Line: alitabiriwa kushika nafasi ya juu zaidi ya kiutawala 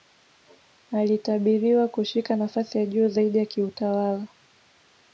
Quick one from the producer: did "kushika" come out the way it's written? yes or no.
yes